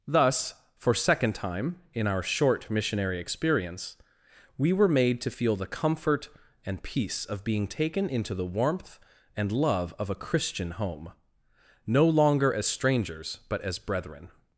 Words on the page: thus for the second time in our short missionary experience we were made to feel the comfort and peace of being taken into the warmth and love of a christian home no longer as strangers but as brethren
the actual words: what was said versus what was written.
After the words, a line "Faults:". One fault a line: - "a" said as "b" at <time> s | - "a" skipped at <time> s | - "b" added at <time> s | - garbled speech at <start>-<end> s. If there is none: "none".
thus for second time in our short missionary experience we were made to feel the comfort and peace of being taken into the warmth and love of a christian home no longer as strangers but as brethren
Faults:
- "the" skipped at 0.9 s